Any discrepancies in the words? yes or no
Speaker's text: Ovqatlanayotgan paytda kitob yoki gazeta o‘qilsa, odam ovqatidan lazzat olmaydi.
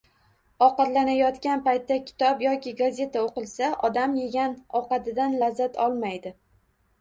yes